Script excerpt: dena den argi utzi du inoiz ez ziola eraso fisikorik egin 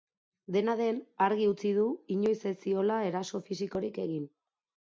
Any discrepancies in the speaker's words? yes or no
no